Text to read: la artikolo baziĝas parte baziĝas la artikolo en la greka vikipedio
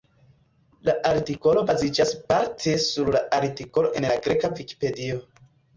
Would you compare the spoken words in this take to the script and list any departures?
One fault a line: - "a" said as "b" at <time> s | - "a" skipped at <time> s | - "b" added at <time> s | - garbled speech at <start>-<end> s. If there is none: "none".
- "baziĝas" said as "sur" at 2.9 s